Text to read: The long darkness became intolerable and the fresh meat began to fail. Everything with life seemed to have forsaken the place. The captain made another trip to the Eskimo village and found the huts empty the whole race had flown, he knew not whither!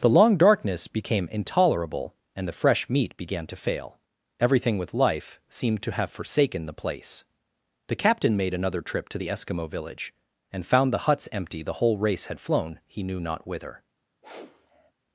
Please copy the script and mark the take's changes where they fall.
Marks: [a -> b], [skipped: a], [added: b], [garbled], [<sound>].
The long darkness became intolerable and the fresh meat began to fail. Everything with life seemed to have forsaken the place. The captain made another trip to the Eskimo village and found the huts empty the whole race had flown, he knew not whither! [sniff]